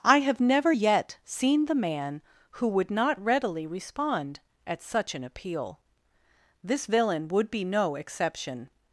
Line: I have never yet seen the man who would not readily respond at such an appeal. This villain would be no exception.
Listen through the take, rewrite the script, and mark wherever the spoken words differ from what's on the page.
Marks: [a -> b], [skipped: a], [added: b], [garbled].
I have never yet seen the man who would not readily respond at such an appeal. This villain would be no exception.